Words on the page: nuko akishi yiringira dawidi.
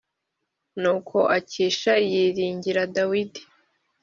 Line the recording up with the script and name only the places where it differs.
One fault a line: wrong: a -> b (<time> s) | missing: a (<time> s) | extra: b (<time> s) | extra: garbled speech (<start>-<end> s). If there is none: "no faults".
no faults